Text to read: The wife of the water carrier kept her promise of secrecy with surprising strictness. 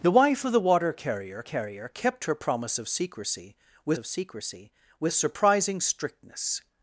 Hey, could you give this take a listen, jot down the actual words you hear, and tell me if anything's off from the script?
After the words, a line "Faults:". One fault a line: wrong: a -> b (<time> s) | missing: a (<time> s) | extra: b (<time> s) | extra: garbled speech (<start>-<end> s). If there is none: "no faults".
The wife of the water carrier carrier kept her promise of secrecy with of secrecy with surprising strictness.
Faults:
extra: carrier (1.4 s)
extra: of secrecy with (4.0 s)